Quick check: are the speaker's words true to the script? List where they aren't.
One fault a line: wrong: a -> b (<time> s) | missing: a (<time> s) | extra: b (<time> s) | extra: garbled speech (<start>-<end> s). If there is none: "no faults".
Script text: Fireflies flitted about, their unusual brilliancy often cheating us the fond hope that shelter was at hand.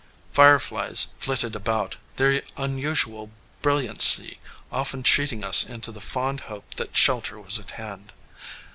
extra: into (5.7 s)